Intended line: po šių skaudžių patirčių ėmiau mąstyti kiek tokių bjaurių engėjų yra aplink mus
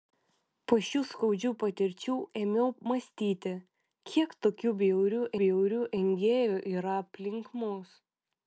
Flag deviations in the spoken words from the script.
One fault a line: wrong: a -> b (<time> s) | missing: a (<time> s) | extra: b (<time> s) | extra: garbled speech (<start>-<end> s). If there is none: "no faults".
extra: bjaurių (5.4 s)